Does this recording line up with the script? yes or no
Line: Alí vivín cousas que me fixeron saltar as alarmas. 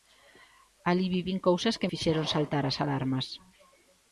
no